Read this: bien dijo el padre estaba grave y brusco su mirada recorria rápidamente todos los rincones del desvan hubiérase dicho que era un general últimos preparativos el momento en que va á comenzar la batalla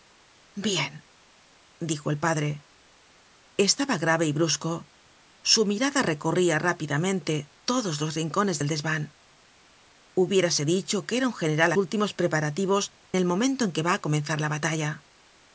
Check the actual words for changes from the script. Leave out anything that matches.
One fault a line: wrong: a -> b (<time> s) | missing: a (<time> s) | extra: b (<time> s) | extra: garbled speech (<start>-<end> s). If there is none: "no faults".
no faults